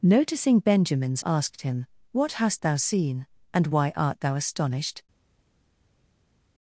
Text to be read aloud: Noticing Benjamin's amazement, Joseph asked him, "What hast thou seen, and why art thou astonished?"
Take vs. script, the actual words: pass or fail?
fail